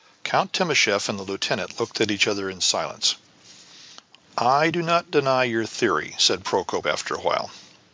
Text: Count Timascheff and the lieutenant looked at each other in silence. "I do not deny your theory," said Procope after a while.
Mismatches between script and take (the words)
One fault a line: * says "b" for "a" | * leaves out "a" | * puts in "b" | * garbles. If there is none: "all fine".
all fine